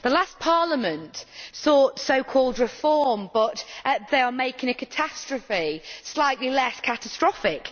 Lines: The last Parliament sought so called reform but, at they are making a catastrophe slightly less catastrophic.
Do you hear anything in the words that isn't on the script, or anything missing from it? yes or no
no